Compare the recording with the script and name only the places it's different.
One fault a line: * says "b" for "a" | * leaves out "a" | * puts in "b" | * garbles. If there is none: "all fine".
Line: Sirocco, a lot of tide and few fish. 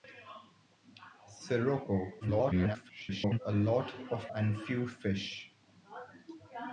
* garbles
* leaves out "tide"